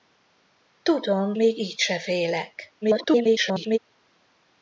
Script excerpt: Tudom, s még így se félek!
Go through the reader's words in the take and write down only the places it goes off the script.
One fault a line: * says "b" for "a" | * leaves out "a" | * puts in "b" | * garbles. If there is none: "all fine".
* leaves out "s"
* garbles